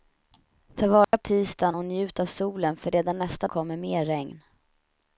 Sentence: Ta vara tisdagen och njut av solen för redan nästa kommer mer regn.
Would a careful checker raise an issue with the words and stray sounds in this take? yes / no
yes